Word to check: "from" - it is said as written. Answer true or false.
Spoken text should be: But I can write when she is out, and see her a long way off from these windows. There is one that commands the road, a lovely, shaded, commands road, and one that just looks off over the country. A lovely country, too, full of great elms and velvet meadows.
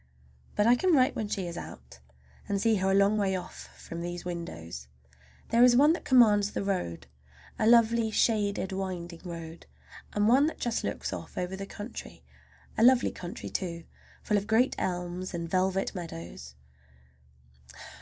true